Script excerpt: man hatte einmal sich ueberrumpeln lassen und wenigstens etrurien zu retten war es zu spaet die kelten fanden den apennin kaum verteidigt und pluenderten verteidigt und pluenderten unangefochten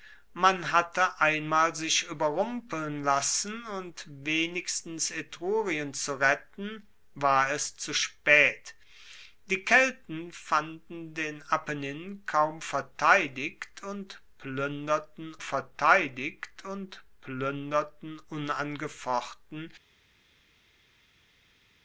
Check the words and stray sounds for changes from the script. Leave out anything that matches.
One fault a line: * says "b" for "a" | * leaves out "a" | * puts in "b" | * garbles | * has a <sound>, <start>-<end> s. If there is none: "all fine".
all fine